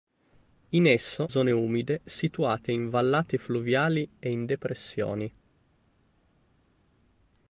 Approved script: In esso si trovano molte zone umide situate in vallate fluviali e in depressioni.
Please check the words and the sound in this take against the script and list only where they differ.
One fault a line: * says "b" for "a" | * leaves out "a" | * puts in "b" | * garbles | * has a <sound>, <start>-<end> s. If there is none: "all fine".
* leaves out "si trovano molte"